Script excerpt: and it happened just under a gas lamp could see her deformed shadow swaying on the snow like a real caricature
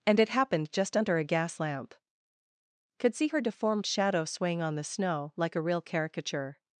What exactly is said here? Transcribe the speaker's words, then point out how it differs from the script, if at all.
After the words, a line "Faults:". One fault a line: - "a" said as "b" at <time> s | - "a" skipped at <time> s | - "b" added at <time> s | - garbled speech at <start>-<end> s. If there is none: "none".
and it happened just under a gas lamp could see her deformed shadow swaying on the snow like a real caricature
Faults:
none